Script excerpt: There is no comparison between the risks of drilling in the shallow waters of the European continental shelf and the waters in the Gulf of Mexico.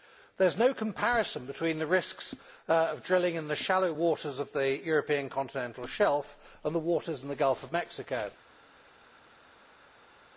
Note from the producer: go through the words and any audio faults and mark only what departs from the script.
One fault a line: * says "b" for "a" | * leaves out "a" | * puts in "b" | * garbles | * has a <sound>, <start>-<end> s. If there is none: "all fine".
all fine